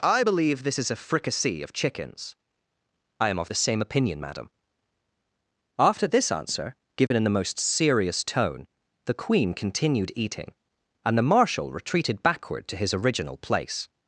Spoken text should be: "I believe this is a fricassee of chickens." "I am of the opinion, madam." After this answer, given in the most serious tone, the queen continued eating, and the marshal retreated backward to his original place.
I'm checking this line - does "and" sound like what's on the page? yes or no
yes